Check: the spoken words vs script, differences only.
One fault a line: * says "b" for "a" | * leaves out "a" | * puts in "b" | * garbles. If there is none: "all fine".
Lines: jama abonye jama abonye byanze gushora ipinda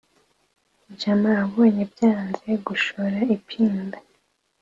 * leaves out "jama abonye"